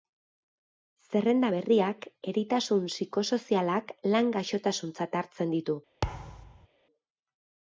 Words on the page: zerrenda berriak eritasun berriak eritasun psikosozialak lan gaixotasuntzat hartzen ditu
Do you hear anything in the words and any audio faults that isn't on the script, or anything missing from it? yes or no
yes